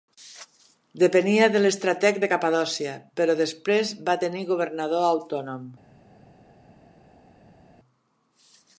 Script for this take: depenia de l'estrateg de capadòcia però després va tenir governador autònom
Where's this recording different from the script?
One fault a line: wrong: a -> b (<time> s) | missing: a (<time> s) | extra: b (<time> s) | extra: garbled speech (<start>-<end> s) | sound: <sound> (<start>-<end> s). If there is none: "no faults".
no faults